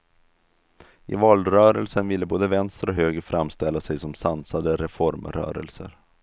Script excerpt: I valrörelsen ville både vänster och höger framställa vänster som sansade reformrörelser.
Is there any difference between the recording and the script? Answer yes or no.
yes